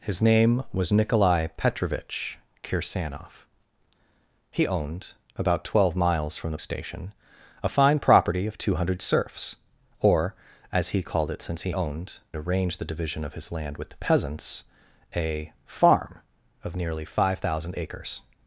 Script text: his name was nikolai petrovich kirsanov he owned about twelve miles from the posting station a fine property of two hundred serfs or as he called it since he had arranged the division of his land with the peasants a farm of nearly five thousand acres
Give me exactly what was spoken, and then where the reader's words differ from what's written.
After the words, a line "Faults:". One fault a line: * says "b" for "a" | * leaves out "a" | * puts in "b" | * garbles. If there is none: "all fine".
his name was nikolai petrovich kirsanov he owned about twelve miles from the station a fine property of two hundred serfs or as he called it since he owned arranged the division of his land with the peasants a farm of nearly five thousand acres
Faults:
* leaves out "posting"
* says "owned" for "had"